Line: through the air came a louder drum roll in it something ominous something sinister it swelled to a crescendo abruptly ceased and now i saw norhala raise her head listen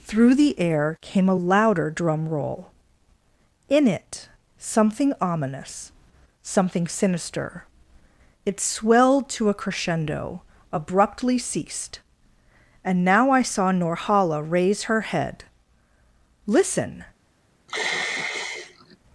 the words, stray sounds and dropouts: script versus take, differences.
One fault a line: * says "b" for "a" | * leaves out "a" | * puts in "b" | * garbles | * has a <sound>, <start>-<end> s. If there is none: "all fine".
* has a sigh, 17.7-19.0 s